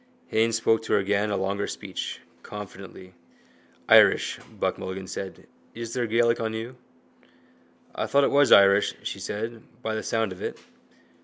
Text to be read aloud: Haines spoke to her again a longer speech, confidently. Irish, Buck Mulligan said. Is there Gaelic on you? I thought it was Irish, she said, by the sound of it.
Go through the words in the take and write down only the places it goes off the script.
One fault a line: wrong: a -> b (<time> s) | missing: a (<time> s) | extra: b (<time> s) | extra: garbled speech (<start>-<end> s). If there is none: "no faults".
no faults